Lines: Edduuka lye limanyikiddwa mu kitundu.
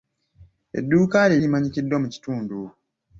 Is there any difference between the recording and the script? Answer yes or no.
no